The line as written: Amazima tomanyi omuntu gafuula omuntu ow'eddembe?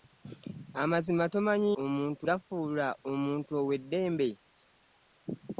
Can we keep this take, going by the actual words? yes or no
yes